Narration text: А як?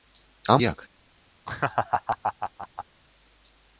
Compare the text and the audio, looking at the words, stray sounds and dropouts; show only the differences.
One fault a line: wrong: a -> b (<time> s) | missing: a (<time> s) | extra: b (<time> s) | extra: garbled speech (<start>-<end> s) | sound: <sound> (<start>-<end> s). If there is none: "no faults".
sound: laugh (1.5-2.9 s)